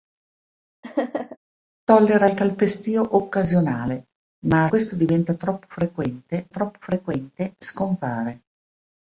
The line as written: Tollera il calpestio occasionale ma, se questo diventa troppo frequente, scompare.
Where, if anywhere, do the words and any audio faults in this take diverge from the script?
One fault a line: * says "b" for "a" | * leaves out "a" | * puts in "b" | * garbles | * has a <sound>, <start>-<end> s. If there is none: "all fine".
* has a laugh, 0.8-1.4 s
* leaves out "se"
* puts in "troppo frequente"